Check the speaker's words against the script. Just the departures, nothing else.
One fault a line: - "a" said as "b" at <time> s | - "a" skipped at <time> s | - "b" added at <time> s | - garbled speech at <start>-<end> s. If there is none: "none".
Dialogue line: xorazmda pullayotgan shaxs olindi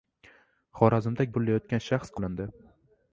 none